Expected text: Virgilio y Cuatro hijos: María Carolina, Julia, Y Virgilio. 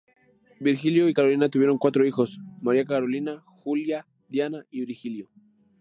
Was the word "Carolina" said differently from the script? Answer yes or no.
no